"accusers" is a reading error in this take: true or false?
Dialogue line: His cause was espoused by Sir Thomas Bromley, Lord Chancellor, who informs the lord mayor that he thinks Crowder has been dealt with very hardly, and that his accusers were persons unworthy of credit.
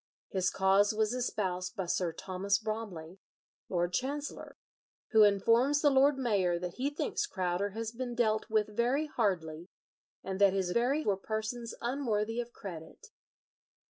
true